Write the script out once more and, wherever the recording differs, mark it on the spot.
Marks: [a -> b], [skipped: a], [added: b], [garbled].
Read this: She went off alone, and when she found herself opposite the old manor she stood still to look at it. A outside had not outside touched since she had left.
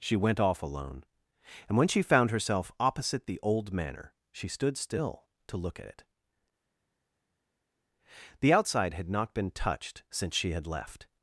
She went off alone, and when she found herself opposite the old manor she stood still to look at it. [A -> The] outside had not [outside -> been] touched since she had left.